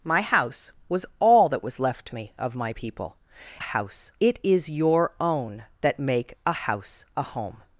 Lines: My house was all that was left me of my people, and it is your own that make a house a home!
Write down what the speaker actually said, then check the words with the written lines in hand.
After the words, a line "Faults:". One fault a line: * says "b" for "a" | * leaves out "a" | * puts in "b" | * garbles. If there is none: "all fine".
My house was all that was left me of my people, house it is your own that make a house a home!
Faults:
* says "house" for "and"